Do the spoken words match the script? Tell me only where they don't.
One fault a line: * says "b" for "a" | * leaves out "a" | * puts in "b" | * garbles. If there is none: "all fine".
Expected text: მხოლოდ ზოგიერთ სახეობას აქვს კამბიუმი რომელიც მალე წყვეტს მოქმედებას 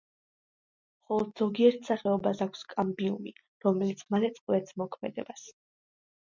all fine